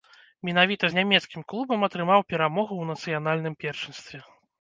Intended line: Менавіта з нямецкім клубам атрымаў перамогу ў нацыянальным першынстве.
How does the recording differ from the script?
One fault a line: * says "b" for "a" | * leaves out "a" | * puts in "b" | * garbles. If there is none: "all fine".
all fine